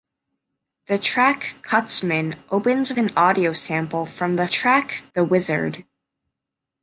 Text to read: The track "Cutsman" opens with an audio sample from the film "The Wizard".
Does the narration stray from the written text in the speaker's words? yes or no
yes